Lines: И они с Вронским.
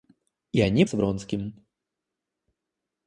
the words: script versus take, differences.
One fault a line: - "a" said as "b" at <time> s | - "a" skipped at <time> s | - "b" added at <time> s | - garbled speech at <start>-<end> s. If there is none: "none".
none